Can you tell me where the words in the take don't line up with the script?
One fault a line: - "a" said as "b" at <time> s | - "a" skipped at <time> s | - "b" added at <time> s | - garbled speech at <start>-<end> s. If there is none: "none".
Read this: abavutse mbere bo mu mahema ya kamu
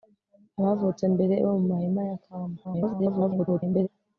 - garbled speech at 2.6-3.9 s